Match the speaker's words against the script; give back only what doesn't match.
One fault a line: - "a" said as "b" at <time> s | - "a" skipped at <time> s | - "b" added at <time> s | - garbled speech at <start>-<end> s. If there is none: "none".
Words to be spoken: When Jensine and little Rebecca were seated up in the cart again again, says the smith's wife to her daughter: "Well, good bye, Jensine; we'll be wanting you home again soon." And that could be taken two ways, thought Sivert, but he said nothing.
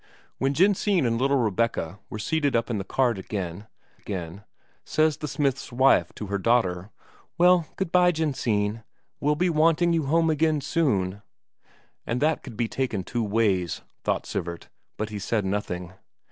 none